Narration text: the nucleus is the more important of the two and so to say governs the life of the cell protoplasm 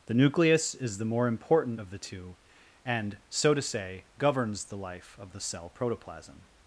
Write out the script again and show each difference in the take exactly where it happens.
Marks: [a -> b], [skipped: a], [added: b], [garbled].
the nucleus is the more important of the two and so to say governs the life of the cell protoplasm